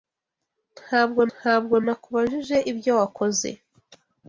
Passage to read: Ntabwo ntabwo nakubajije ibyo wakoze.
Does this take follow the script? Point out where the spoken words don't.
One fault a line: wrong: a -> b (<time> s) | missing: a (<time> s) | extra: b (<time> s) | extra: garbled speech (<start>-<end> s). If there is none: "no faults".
no faults